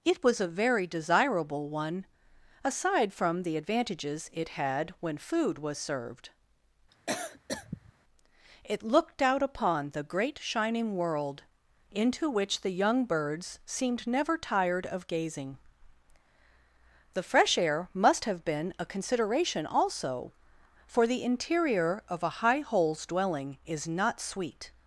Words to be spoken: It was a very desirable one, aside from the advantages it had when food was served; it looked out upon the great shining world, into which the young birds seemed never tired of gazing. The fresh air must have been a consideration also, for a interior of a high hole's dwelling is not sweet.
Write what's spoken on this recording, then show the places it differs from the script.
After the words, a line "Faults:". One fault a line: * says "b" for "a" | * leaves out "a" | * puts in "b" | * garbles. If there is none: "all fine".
It was a very desirable one, aside from the advantages it had when food was served; it looked out upon the great shining world, into which the young birds seemed never tired of gazing. The fresh air must have been a consideration also, for the interior of a high hole's dwelling is not sweet.
Faults:
* says "the" for "a"